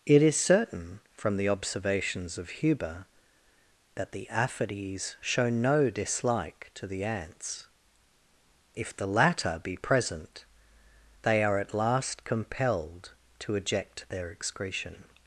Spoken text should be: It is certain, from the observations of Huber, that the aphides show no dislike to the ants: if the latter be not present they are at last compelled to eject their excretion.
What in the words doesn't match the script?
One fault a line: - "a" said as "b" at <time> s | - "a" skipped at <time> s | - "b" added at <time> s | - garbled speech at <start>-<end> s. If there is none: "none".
- "not" skipped at 9.8 s